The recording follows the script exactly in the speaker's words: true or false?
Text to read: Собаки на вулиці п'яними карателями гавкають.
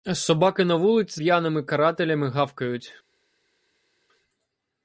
true